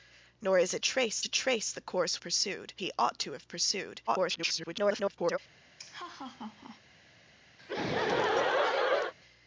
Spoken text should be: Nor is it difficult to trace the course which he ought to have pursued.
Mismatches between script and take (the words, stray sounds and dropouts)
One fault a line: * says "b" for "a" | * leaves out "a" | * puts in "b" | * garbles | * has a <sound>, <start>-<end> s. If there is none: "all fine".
* says "trace" for "difficult"
* says "pursued" for "which"
* garbles
* has a laugh, 5.8-6.8 s
* has a laugh, 7.6-9.1 s